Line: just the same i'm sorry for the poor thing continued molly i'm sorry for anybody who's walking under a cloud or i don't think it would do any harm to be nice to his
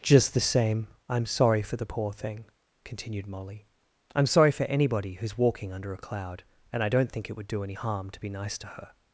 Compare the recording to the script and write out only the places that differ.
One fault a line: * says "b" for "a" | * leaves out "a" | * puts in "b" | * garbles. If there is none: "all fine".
* says "and" for "or"
* says "her" for "his"